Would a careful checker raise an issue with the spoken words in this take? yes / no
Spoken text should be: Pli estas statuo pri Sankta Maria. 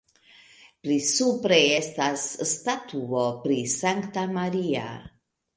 yes